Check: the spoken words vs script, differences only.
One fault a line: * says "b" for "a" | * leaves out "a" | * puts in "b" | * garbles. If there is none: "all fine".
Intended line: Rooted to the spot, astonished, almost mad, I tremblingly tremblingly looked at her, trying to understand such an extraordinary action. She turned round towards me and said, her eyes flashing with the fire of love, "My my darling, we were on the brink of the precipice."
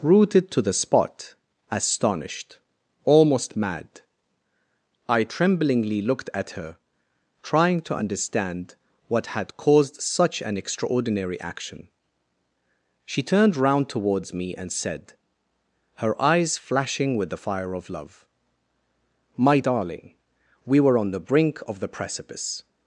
* leaves out "tremblingly"
* puts in "what had caused"
* leaves out "my"